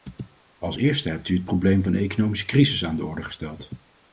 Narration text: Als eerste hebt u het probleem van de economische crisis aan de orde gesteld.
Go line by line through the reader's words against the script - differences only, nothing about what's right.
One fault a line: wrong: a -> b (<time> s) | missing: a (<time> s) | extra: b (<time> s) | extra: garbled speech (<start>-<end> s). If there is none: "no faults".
no faults